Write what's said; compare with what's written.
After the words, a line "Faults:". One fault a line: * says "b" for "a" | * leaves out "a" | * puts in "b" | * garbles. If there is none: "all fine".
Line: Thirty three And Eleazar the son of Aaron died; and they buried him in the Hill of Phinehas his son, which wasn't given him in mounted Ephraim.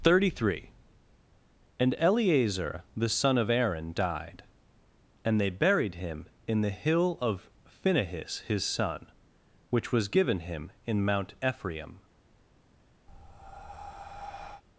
Thirty three And Eleazar the son of Aaron died; and they buried him in the Hill of Phinehas his son, which was given him in mount Ephraim.
Faults:
* says "was" for "wasn't"
* says "mount" for "mounted"